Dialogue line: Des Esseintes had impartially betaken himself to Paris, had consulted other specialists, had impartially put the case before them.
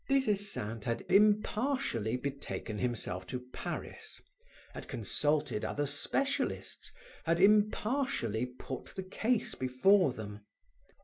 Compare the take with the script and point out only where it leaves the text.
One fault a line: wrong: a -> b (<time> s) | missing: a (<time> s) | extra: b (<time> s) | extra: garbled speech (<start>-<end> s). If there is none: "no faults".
no faults